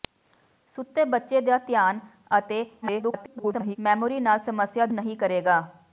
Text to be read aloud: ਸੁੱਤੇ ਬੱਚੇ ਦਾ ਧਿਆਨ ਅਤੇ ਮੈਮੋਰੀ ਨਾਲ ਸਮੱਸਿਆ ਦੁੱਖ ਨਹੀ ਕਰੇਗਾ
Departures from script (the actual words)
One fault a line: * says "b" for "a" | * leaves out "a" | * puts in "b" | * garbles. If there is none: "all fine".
* garbles
* leaves out "ਦੁੱਖ"